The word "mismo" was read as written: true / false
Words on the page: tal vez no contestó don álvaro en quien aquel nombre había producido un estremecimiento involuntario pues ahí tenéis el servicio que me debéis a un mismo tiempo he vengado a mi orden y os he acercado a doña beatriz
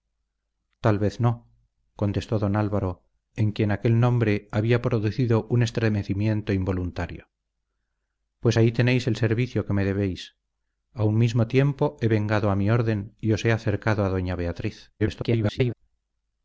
true